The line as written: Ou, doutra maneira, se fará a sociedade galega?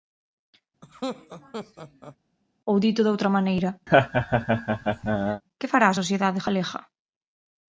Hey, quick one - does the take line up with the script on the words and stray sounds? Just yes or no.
no